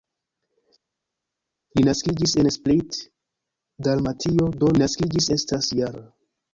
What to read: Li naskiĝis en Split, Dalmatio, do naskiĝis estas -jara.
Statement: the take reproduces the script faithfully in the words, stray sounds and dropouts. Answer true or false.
true